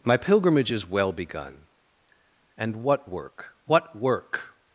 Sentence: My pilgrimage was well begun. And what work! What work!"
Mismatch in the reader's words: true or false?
true